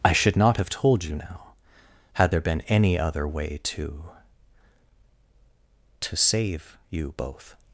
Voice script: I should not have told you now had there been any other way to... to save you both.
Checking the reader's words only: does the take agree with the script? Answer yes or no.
yes